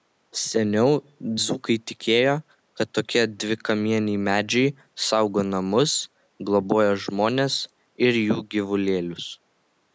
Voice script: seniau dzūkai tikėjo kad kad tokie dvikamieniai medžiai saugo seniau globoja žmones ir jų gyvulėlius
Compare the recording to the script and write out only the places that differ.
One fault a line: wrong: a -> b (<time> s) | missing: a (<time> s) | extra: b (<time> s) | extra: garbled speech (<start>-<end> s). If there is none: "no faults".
missing: kad (2.9 s)
wrong: seniau -> namus (5.5 s)